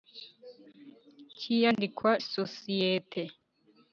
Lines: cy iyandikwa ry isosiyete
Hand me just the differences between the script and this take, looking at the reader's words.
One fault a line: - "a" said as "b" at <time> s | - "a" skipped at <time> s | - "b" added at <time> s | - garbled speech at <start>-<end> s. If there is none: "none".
- "ry" skipped at 2.1 s